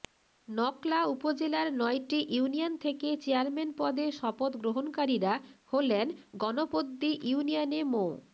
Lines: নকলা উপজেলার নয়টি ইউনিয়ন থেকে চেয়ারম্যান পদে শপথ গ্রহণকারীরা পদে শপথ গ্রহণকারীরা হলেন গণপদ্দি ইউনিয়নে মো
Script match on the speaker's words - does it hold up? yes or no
no